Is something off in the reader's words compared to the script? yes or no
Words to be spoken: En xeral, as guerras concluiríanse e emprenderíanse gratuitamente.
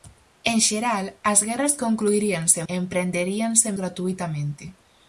no